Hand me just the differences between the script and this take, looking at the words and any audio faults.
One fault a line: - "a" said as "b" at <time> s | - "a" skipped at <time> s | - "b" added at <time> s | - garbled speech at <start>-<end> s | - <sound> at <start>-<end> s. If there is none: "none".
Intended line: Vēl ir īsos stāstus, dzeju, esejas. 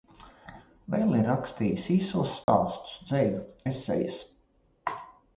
- "rakstījis" added at 1.3 s
- dropout at 2.4-2.5 s